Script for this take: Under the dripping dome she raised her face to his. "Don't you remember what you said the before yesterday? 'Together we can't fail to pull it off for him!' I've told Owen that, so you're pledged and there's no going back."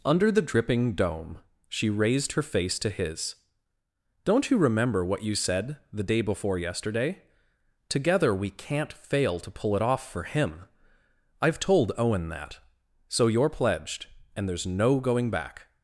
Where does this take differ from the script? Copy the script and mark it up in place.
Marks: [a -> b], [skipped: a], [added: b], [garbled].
Under the dripping dome she raised her face to his. "Don't you remember what you said the [added: day] before yesterday? 'Together we can't fail to pull it off for him!' I've told Owen that, so you're pledged and there's no going back."